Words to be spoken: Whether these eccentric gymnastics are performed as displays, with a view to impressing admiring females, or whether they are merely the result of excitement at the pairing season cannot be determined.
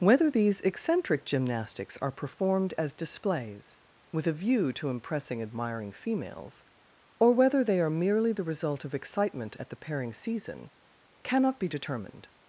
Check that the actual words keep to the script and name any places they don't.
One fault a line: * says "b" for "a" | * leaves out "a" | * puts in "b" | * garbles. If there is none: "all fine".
all fine